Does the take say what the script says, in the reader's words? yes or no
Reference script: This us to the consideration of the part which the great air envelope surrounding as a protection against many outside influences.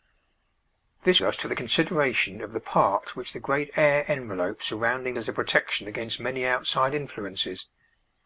yes